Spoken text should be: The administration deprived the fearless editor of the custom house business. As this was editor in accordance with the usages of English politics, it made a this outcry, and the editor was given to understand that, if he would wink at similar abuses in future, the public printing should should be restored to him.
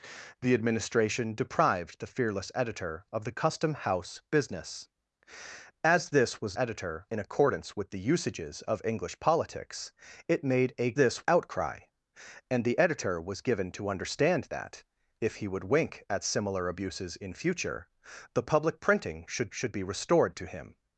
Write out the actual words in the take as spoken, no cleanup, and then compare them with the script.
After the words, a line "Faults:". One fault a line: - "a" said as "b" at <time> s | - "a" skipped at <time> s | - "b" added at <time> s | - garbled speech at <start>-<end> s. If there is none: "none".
The administration deprived the fearless editor of the custom house business. As this was editor in accordance with the usages of English politics, it made a this outcry, and the editor was given to understand that, if he would wink at similar abuses in future, the public printing should should be restored to him.
Faults:
none